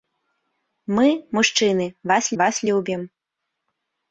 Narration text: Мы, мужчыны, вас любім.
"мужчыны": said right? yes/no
yes